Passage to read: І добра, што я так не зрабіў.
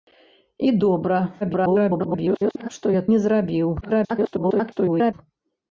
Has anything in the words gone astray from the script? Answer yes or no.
yes